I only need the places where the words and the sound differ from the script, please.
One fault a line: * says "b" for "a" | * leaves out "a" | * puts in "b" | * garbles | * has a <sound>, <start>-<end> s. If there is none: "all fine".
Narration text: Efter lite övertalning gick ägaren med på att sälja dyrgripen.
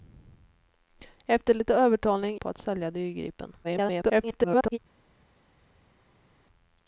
* leaves out "gick ägaren med"
* garbles